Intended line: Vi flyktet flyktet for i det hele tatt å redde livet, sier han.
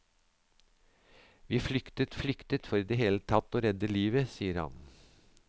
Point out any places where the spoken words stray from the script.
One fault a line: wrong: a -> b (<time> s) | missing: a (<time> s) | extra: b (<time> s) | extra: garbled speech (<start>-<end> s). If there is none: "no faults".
no faults